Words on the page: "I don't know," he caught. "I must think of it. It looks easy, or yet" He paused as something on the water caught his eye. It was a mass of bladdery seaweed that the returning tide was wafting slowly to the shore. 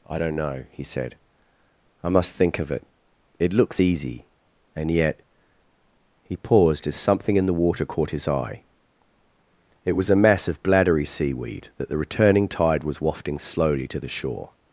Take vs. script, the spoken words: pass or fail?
fail